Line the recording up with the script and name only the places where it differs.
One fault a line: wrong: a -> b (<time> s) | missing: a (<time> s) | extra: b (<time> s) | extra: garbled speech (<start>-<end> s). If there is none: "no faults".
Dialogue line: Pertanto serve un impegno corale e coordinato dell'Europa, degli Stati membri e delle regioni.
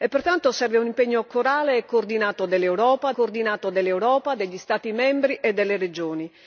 extra: coordinato dell'Europa (3.1 s)